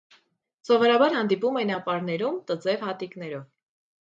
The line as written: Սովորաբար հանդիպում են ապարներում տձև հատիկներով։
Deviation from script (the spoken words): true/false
false